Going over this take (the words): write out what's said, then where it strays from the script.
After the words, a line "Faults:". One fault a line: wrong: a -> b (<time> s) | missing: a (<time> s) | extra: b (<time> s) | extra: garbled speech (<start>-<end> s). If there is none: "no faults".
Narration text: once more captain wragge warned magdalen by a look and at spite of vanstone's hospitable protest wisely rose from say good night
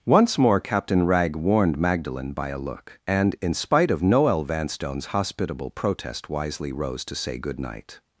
once more captain wragge warned magdalen by a look and in spite of noel vanstone's hospitable protest wisely rose to say good night
Faults:
wrong: at -> in (3.4 s)
extra: noel (4.0 s)
wrong: from -> to (7.0 s)